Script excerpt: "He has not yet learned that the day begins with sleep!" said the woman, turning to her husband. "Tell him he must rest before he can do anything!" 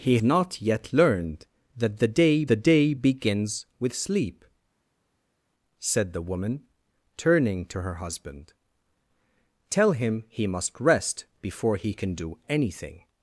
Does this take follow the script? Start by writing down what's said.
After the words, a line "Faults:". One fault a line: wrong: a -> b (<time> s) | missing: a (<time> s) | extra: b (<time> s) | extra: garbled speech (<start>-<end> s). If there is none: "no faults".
"He not yet learned that the day the day begins with sleep!" said the woman, turning to her husband. "Tell him he must rest before he can do anything!"
Faults:
missing: has (0.2 s)
extra: the day (2.5 s)